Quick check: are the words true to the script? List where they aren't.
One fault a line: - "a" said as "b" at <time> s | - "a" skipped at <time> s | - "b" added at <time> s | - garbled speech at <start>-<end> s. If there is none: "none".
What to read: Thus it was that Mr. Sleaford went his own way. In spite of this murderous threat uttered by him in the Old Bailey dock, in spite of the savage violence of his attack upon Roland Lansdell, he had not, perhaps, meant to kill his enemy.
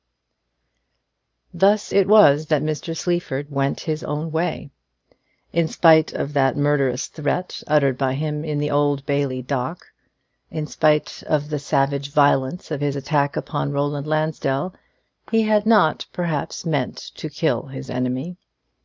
- "this" said as "that" at 6.3 s